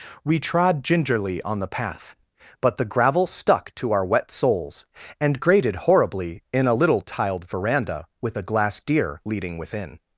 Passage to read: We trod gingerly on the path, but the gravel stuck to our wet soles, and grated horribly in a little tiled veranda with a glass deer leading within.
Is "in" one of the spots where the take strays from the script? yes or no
no